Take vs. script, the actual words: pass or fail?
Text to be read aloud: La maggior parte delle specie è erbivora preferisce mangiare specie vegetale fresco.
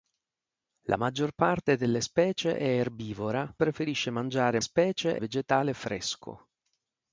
pass